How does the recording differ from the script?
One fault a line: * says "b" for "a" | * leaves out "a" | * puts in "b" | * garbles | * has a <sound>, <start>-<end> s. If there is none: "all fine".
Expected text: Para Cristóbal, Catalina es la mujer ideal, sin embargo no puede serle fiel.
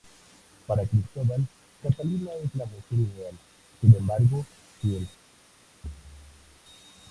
* leaves out "no puede serle"
* has a thud, 5.8-6.6 s